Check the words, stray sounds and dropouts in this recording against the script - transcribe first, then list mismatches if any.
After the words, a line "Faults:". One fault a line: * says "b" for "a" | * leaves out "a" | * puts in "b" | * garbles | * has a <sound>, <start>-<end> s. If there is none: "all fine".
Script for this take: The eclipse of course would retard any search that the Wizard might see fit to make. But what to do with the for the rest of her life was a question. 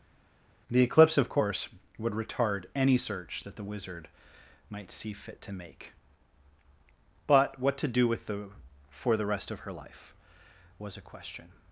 The eclipse of course would retard any search that the Wizard might see fit to make. But what to do with the for the rest of her life was a question.
Faults:
all fine